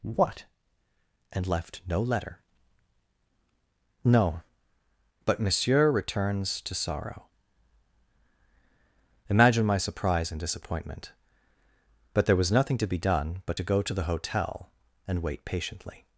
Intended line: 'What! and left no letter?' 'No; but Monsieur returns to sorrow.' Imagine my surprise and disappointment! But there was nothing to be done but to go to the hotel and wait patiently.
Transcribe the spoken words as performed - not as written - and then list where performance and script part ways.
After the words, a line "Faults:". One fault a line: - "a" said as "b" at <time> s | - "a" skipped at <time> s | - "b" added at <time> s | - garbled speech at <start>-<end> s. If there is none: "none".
'What! and left no letter?' 'No; but Monsieur returns to sorrow.' Imagine my surprise and disappointment! But there was nothing to be done but to go to the hotel and wait patiently.
Faults:
none